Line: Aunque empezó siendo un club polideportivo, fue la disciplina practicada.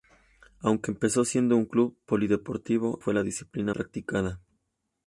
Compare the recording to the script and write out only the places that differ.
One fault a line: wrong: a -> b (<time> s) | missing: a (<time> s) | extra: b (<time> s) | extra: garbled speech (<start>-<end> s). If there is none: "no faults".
no faults